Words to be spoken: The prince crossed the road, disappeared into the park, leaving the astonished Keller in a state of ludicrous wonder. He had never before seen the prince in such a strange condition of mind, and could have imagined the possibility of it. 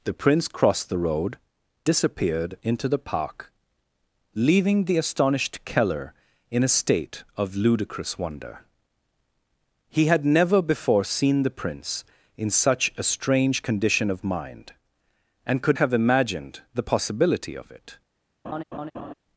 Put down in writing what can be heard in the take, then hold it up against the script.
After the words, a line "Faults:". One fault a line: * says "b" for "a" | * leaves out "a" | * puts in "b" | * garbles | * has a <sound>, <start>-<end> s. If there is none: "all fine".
The prince crossed the road, disappeared into the park, leaving the astonished Keller in a state of ludicrous wonder. He had never before seen the prince in such a strange condition of mind, and could have imagined the possibility of it.
Faults:
* has a laugh, 18.4-19.1 s